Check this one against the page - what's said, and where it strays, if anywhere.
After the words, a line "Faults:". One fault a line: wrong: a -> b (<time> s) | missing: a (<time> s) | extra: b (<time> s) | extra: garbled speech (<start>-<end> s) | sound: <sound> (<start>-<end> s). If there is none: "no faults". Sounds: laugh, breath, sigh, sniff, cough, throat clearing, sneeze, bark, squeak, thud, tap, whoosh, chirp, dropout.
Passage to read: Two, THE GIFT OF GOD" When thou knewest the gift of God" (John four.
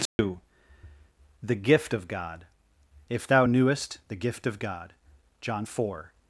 Two, THE GIFT OF GOD" If thou knewest the gift of God" (John four.
Faults:
sound: dropout (0.1-0.2 s)
wrong: When -> If (3.1 s)